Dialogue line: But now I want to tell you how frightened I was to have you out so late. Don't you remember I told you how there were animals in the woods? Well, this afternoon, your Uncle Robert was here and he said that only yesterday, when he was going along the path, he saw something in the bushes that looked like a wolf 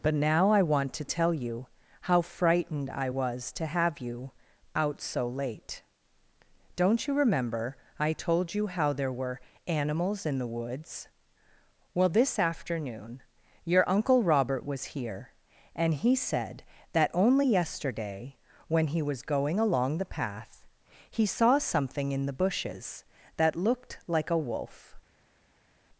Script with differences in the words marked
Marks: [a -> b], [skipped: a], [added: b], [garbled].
But now I want to tell you how frightened I was to have you out so late. Don't you remember I told you how there were animals in the woods? Well, this afternoon, your Uncle Robert was here and he said that only yesterday, when he was going along the path, he saw something in the bushes that looked like a wolf